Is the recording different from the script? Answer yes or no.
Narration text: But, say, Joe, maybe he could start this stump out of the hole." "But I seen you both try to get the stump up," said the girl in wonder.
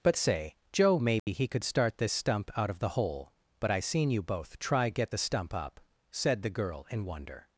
yes